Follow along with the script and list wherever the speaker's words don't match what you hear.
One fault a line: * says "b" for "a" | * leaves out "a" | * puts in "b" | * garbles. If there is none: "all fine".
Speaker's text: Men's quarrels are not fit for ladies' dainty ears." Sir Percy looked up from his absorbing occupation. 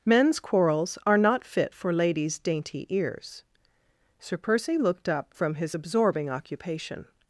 all fine